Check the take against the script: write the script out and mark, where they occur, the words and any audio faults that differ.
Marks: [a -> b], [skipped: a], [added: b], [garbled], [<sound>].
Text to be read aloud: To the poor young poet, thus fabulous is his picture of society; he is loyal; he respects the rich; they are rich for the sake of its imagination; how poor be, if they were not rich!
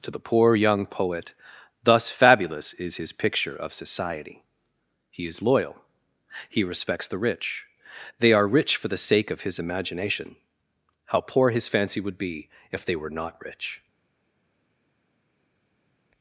To the poor young poet, thus fabulous is his picture of society; he is loyal; he respects the rich; they are rich for the sake of [its -> his] imagination; how poor [added: his fancy would] be, if they were not rich!